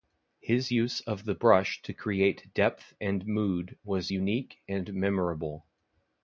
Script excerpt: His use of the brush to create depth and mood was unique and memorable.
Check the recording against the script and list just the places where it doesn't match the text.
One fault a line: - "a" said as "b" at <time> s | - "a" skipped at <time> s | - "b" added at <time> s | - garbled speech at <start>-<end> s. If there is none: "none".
none